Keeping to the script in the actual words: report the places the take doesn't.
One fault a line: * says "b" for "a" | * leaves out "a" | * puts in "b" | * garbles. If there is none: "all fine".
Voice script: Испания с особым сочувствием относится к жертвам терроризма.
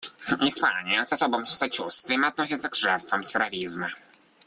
all fine